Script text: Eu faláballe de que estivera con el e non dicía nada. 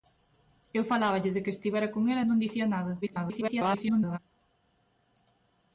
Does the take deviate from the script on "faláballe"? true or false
false